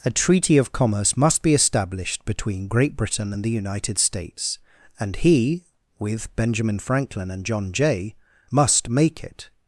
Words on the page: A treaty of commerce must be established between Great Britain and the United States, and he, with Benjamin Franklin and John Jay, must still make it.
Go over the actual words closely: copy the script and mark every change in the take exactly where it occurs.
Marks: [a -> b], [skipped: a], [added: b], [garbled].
A treaty of commerce must be established between Great Britain and the United States, and he, with Benjamin Franklin and John Jay, must [skipped: still] make it.